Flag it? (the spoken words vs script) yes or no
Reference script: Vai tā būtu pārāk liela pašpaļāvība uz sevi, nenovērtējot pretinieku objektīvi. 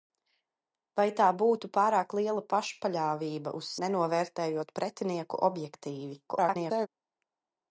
yes